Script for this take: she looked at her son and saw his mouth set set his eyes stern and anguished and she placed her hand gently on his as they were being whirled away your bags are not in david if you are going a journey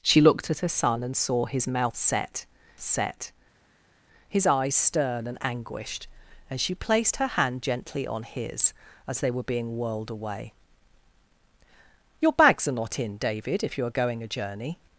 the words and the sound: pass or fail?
pass